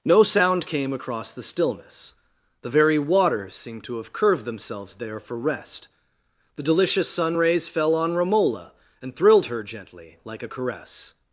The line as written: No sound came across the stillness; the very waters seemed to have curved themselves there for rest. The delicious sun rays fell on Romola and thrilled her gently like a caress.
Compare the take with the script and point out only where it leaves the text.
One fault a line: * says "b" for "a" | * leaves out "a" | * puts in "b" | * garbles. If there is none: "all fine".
all fine